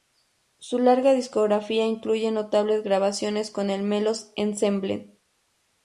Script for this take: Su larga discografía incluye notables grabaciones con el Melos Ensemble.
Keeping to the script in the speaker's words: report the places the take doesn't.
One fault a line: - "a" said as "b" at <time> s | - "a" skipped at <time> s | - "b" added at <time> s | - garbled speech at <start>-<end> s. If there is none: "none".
none